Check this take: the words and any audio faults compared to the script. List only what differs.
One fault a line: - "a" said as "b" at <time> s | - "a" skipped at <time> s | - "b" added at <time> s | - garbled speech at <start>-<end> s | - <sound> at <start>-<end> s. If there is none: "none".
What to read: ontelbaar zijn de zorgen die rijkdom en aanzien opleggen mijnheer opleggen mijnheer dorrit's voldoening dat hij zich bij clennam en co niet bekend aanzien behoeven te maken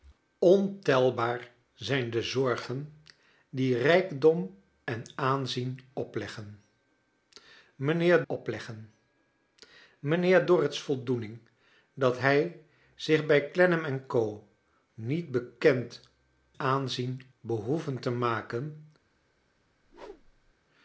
- whoosh at 19.8-20.5 s